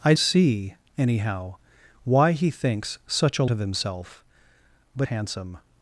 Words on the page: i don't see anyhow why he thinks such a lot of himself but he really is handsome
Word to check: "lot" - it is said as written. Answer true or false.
false